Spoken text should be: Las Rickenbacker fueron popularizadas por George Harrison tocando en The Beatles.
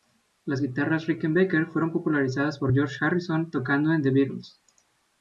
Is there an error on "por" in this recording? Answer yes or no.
no